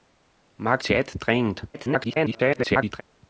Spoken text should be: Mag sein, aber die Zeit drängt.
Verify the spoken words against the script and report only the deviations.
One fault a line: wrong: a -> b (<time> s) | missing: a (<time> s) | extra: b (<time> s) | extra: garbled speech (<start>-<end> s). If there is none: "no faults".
missing: sein aber die (0.8 s)
extra: garbled speech (1.7-3.0 s)